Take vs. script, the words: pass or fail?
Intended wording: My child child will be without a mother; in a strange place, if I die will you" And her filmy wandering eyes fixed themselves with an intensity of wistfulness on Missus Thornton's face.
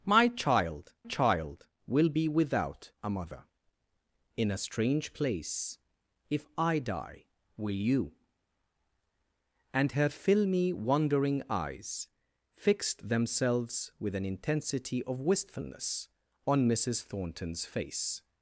pass